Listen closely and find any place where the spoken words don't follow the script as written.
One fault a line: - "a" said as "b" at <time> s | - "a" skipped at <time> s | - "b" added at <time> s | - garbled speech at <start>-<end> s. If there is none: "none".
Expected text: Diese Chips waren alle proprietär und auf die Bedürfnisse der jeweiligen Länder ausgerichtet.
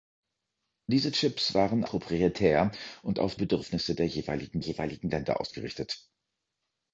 - "alle" skipped at 1.8 s
- "die" skipped at 3.4 s
- "jeweiligen" added at 4.6 s